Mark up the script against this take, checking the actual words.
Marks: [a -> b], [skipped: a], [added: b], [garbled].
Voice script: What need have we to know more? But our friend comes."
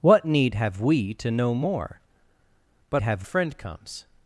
What need have we to know more? But [our -> have] friend comes."